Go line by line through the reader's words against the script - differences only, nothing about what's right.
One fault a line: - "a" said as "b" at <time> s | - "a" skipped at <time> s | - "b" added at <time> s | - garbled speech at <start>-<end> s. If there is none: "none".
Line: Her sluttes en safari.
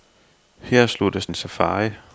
none